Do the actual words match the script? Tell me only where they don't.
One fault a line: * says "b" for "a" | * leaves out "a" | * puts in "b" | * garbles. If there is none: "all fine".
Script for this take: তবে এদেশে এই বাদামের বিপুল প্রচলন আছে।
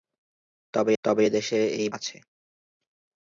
* puts in "তবে"
* leaves out "বাদামের বিপুল প্রচলন"